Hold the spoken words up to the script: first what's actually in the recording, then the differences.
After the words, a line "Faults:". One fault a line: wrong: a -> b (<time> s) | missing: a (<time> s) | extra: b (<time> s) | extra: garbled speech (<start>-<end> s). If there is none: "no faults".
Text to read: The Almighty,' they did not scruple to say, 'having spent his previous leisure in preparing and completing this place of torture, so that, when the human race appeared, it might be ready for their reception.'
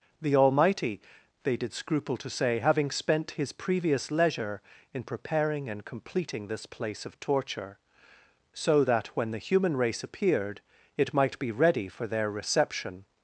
The Almighty,' they did scruple to say, 'having spent his previous leisure in preparing and completing this place of torture, so that, when the human race appeared, it might be ready for their reception.'
Faults:
missing: not (1.7 s)